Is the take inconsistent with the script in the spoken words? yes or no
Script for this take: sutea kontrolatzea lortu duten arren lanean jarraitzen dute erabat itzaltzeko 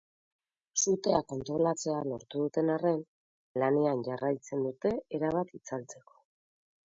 no